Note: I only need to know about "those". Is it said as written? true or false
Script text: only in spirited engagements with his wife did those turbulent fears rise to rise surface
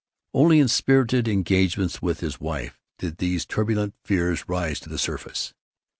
false